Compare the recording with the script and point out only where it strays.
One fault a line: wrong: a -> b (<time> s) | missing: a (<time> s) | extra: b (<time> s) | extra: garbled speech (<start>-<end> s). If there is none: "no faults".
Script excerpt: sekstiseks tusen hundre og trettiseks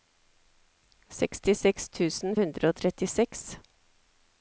no faults